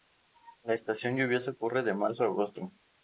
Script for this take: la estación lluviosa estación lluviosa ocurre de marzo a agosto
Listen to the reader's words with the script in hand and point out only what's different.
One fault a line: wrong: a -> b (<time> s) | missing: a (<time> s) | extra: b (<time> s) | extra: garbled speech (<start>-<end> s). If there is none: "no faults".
missing: estación lluviosa (1.5 s)